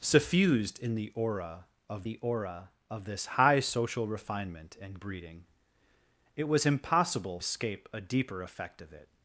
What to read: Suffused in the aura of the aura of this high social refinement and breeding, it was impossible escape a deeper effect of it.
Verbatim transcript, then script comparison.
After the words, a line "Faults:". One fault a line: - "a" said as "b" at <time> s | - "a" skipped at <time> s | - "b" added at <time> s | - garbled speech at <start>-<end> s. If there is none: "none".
Suffused in the aura of the aura of this high social refinement and breeding, it was impossible escape a deeper effect of it.
Faults:
none